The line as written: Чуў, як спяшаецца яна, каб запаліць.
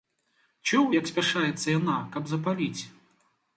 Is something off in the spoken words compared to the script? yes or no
no